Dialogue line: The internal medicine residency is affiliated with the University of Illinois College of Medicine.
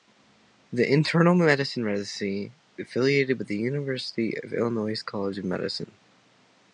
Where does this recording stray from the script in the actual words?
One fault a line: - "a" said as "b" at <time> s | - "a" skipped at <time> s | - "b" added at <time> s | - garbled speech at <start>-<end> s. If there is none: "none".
- "is" skipped at 2.5 s